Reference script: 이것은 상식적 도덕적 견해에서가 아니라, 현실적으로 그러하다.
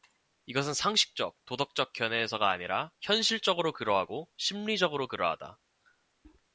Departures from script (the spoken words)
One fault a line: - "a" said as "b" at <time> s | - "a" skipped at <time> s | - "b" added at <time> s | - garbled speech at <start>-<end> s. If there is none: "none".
- "그러하고 심리적으로" added at 3.7 s